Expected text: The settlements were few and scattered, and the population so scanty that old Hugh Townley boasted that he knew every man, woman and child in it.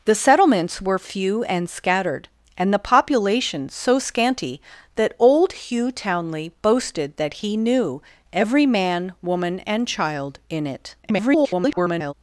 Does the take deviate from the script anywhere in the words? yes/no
yes